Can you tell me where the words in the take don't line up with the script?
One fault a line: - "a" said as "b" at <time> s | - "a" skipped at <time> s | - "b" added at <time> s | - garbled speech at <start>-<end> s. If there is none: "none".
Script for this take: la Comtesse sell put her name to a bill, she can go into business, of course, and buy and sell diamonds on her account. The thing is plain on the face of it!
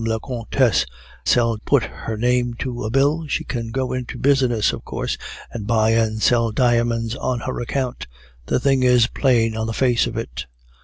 none